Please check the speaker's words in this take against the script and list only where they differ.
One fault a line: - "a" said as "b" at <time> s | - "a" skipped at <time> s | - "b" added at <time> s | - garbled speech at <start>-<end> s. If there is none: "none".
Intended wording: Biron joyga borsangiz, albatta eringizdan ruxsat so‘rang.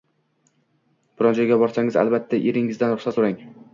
none